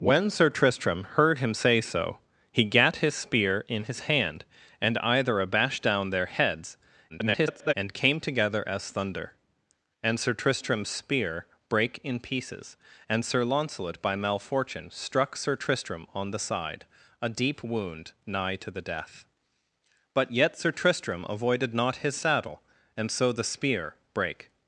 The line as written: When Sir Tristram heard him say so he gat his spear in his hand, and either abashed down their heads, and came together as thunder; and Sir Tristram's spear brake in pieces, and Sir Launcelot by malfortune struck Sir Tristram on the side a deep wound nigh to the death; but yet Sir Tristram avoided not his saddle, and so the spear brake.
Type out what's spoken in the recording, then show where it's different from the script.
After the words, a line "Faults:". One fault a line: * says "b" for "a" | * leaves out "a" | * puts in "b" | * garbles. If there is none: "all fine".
When Sir Tristram heard him say so he gat his spear in his hand, and either abashed down their heads, [garbled] and came together as thunder; and Sir Tristram's spear brake in pieces, and Sir Launcelot by malfortune struck Sir Tristram on the side a deep wound nigh to the death; but yet Sir Tristram avoided not his saddle, and so the spear brake.
Faults:
* garbles